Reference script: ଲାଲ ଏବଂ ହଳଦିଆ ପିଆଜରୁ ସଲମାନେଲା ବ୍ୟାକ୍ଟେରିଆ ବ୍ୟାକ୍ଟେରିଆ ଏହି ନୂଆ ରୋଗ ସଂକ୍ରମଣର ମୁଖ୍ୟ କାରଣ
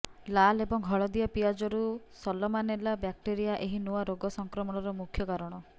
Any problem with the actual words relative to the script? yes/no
yes